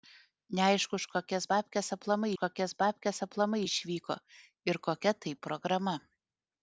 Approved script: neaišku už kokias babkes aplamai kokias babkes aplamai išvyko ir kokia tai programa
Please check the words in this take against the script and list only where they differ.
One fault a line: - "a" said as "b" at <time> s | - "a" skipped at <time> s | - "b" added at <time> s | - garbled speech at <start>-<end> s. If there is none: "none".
none